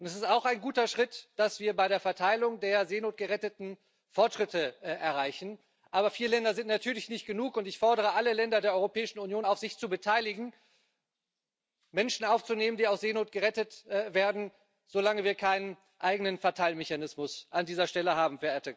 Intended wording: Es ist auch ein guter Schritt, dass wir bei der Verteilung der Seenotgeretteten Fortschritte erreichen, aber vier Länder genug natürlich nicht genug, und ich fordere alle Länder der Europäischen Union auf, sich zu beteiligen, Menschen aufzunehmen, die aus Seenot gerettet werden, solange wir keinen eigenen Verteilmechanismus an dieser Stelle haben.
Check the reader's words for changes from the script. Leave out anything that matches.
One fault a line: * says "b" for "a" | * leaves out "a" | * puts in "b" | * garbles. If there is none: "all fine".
* says "sind" for "genug"